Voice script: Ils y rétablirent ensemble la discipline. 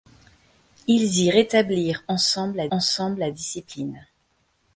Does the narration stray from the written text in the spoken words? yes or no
yes